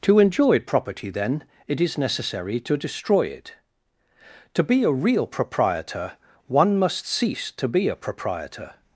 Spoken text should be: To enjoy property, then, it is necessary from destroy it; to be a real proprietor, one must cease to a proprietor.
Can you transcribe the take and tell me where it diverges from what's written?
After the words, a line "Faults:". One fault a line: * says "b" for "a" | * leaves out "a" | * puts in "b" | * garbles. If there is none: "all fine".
To enjoy property, then, it is necessary to destroy it; to be a real proprietor, one must cease to be a proprietor.
Faults:
* says "to" for "from"
* puts in "be"